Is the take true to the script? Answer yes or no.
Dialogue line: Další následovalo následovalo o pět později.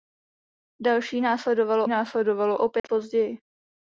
yes